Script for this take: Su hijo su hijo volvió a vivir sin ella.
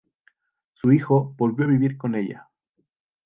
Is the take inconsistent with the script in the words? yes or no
yes